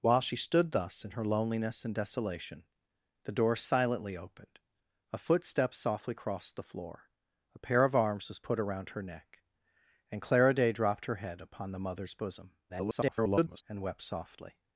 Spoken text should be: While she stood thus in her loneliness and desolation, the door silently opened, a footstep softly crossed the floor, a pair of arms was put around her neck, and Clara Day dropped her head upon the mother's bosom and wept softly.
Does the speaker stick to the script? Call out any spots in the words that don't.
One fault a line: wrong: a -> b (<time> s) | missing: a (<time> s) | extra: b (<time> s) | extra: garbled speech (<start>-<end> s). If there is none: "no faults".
extra: garbled speech (12.7-13.6 s)